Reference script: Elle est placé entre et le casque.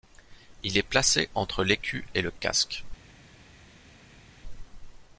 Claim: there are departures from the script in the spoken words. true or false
true